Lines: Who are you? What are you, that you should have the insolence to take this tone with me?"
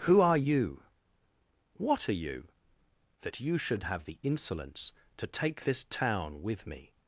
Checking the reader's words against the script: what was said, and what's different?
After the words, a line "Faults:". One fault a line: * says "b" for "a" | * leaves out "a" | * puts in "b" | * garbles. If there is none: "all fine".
Who are you? What are you, that you should have the insolence to take this town with me?"
Faults:
* says "town" for "tone"